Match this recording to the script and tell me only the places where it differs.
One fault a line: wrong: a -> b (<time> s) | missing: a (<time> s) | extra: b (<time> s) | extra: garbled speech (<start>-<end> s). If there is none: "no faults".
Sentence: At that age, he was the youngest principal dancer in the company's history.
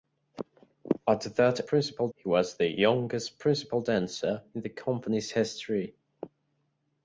wrong: age -> principal (1.6 s)